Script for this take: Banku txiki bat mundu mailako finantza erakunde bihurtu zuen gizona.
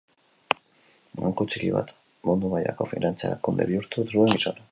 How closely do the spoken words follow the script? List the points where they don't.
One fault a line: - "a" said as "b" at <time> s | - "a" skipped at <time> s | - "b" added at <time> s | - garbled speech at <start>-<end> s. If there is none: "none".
none